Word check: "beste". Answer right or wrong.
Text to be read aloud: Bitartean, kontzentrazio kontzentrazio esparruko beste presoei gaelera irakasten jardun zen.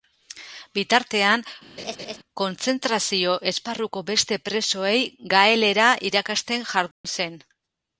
right